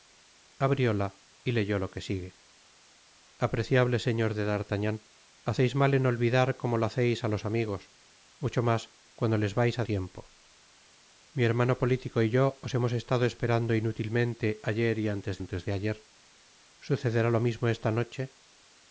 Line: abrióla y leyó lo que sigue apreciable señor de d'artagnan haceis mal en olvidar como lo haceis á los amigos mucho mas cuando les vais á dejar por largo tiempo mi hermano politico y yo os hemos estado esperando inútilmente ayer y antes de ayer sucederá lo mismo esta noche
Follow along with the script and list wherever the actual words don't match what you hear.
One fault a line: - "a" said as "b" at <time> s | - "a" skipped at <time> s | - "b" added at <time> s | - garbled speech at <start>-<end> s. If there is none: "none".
- "dejar por largo" skipped at 9.8 s
- "antes" added at 15.4 s